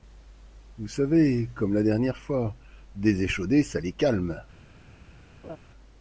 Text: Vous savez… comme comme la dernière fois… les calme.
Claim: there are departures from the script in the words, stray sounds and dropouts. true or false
true